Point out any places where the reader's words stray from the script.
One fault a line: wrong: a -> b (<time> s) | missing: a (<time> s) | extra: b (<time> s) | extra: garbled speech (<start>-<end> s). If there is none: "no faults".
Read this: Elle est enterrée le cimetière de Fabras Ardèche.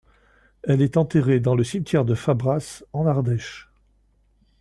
extra: dans (1.4 s)
extra: en (2.9 s)